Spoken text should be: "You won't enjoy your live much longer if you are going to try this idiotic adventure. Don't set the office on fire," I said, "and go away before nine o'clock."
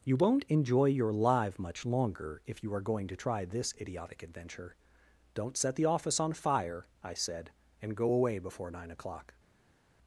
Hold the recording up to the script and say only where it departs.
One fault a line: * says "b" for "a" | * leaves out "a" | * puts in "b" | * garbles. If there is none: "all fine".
all fine